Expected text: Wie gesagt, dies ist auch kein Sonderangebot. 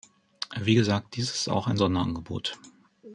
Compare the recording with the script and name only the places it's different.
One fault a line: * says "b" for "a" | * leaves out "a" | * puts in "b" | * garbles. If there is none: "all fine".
* says "ein" for "kein"